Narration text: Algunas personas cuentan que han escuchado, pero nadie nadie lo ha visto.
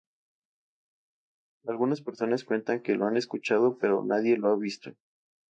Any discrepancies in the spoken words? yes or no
yes